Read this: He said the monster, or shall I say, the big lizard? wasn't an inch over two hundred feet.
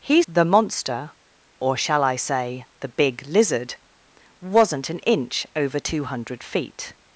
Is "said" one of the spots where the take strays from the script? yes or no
yes